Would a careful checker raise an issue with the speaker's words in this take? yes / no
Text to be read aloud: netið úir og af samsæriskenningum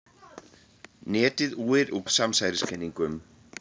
no